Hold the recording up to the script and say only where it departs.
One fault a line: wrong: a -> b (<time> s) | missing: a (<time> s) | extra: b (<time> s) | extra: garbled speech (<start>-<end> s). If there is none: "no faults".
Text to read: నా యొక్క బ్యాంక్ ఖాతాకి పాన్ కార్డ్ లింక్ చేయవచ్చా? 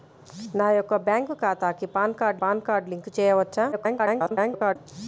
extra: పాన్ కార్డ్ (2.4 s)
extra: garbled speech (3.7-4.8 s)